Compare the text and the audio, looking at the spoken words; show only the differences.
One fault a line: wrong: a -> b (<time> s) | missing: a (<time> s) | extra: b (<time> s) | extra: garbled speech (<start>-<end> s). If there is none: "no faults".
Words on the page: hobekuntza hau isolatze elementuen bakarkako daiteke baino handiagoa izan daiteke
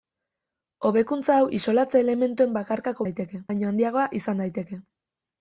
no faults